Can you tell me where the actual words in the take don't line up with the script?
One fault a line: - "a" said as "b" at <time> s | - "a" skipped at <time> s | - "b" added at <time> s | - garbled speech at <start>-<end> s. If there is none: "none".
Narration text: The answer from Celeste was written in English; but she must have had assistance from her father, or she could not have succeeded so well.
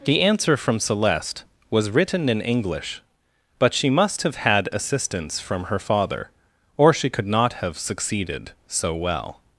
none